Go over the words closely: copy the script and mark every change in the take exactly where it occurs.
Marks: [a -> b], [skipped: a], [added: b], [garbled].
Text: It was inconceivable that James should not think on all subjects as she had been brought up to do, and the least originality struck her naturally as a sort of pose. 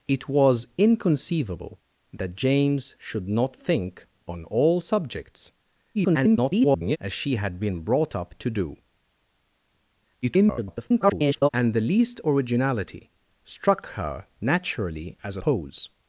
It was inconceivable that James should not think on all subjects [garbled] as she had been brought up to do, [garbled] and the least originality struck her naturally as a [skipped: sort of] pose.